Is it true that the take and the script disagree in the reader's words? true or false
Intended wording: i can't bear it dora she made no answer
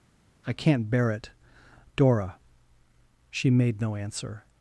false